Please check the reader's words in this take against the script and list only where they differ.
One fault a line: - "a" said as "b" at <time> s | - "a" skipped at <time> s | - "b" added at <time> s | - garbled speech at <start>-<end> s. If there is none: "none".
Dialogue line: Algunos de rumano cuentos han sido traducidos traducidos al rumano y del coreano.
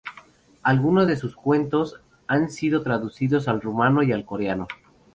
- "rumano" said as "sus" at 1.1 s
- "traducidos" skipped at 3.5 s
- "del" said as "al" at 4.1 s